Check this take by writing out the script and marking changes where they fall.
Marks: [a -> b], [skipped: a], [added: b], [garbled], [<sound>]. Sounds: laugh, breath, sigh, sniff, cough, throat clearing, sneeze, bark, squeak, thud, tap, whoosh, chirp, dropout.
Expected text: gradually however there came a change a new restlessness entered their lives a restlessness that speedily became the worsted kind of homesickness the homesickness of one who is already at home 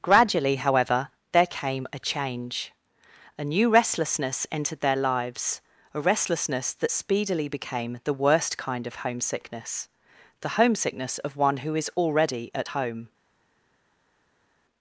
gradually however there came a change a new restlessness entered their lives a restlessness that speedily became the [worsted -> worst] kind of homesickness the homesickness of one who is already at home